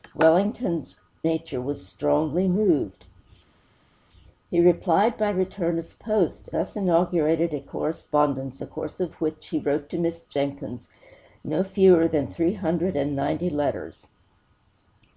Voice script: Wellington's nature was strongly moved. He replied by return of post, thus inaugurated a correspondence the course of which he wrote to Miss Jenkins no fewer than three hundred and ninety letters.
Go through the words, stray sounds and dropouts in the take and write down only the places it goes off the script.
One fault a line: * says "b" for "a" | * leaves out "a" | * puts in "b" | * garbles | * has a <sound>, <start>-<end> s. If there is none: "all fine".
all fine